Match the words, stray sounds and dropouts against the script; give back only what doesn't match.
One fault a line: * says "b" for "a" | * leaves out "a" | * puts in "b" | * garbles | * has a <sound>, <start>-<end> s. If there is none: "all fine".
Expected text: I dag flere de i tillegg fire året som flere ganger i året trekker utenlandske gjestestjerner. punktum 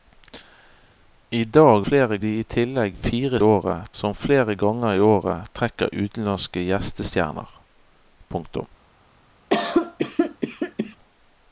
* has a cough, 9.5-11.0 s